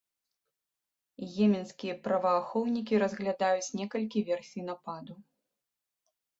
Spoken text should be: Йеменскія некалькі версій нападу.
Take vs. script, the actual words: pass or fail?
fail